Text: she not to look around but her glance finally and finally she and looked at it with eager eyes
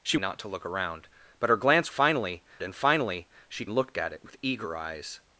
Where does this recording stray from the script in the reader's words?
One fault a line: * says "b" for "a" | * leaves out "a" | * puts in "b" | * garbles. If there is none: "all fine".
all fine